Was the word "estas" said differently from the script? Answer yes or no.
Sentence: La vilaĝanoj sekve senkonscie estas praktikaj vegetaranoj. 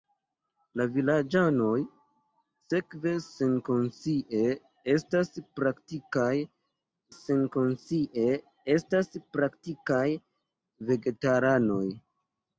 no